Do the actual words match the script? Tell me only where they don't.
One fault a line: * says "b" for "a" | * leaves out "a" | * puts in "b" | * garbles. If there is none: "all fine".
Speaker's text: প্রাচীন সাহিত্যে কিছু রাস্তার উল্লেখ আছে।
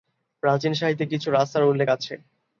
all fine